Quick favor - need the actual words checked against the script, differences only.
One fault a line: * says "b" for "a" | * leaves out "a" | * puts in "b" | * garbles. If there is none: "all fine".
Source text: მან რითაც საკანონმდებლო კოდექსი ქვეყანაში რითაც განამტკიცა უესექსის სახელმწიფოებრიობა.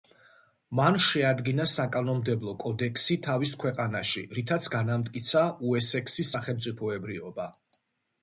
* says "შეადგინა" for "რითაც"
* puts in "თავის"